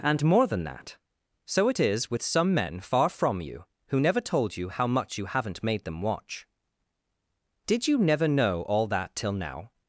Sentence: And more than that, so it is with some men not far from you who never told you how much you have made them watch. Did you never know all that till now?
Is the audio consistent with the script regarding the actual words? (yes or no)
no